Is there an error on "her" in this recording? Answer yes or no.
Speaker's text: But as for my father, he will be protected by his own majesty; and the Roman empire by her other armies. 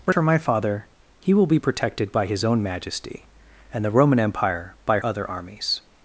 yes